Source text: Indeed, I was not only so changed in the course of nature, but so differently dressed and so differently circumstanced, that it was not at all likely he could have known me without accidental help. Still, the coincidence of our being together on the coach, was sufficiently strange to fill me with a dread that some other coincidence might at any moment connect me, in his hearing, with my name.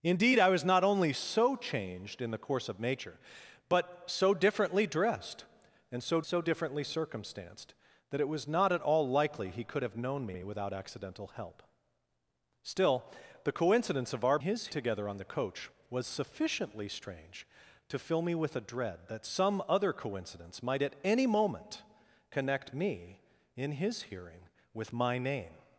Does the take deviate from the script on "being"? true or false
true